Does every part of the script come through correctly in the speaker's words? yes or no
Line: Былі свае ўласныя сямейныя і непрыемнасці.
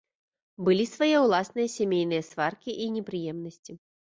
no